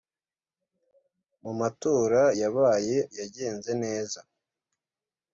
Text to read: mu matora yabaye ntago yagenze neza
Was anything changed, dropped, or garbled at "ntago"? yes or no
yes